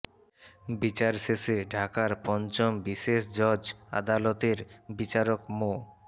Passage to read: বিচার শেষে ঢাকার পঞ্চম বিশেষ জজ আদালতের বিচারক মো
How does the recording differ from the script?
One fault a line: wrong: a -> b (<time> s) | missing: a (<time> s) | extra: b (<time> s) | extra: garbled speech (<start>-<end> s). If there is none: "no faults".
no faults